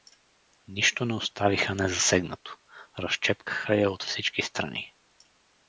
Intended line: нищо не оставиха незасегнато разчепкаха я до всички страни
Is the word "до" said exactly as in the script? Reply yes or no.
no